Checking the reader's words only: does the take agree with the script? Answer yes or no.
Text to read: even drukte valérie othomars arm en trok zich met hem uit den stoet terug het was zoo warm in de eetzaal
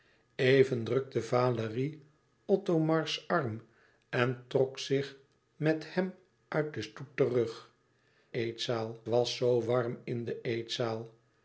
no